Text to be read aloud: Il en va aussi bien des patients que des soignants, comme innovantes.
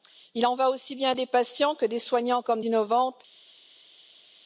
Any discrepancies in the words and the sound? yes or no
no